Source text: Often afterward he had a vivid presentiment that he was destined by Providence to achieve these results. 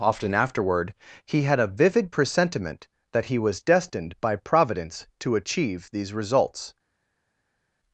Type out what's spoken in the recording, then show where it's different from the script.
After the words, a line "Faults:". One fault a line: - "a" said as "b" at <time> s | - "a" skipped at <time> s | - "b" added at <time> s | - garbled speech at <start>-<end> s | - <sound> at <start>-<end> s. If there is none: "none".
Often afterward he had a vivid presentiment that he was destined by Providence to achieve these results.
Faults:
none